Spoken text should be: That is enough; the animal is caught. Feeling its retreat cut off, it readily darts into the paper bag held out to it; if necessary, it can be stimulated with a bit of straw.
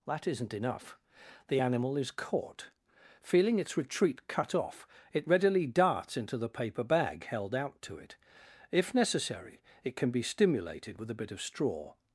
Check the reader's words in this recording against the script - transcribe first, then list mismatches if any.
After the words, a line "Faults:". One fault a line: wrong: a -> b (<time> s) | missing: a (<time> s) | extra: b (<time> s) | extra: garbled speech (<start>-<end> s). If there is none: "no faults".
That isn't enough; the animal is caught. Feeling its retreat cut off, it readily darts into the paper bag held out to it; if necessary, it can be stimulated with a bit of straw.
Faults:
wrong: is -> isn't (0.3 s)